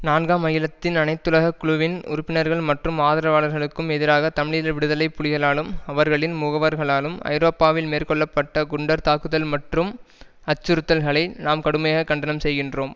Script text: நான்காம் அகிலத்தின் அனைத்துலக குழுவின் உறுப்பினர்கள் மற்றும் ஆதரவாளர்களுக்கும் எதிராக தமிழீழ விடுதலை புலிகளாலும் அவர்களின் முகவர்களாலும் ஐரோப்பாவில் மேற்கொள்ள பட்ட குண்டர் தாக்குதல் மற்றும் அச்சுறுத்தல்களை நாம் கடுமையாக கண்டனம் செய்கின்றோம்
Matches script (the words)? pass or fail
pass